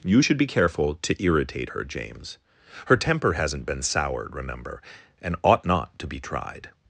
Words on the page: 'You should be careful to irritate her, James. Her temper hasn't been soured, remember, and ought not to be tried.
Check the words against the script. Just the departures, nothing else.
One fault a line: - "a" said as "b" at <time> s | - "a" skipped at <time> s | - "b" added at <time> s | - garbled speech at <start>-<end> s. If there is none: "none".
none